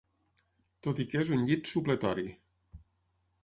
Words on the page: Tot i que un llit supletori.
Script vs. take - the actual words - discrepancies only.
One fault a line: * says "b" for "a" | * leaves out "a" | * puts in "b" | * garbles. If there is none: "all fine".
* puts in "és"